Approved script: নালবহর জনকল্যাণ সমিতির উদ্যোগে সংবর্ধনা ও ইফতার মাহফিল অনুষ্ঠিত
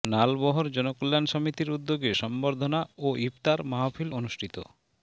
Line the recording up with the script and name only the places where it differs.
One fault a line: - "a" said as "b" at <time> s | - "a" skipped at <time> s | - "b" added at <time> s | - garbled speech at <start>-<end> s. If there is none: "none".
none